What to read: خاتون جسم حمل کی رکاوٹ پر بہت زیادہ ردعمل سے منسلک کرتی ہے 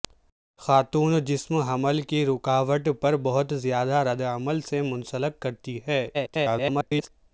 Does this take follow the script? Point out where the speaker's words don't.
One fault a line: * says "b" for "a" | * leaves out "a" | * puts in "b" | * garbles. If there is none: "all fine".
* garbles